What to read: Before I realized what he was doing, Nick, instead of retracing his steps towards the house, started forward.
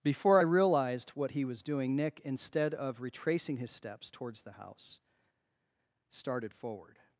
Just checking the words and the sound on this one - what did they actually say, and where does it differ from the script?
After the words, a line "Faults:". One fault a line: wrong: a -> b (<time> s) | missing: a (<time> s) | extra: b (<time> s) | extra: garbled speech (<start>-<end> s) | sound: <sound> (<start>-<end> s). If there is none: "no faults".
Before I realized what he was doing, Nick, instead of retracing his steps towards the house, started forward.
Faults:
no faults